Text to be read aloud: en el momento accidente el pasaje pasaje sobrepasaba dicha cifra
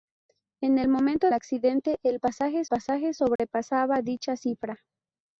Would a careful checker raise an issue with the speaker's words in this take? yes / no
no